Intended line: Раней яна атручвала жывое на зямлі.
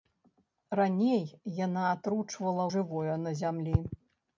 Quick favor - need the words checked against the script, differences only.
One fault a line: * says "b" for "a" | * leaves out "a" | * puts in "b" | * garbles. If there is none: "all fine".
all fine